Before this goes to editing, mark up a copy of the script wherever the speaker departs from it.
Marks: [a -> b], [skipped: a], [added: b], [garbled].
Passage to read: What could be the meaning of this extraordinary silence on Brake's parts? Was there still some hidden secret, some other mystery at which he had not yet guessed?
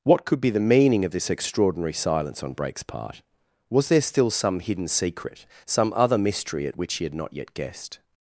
What could be the meaning of this extraordinary silence on Brake's [parts? -> part] Was there still some hidden secret, some other mystery at which he had not yet guessed?